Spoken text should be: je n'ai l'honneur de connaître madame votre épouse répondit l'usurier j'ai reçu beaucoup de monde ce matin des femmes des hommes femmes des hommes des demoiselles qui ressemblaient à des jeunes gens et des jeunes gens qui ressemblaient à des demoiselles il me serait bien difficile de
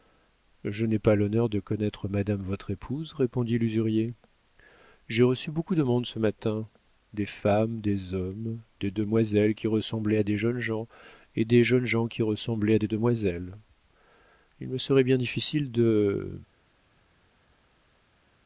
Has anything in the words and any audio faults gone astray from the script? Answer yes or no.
yes